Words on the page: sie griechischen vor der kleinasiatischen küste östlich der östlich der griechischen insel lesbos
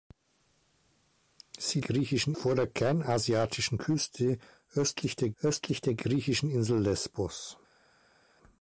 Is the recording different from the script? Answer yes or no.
no